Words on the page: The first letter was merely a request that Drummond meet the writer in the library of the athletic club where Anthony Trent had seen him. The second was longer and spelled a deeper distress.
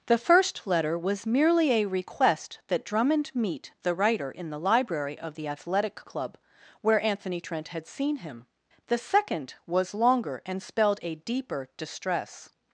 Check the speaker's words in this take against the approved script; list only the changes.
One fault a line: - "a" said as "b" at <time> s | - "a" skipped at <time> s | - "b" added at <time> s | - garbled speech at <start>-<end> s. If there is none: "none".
none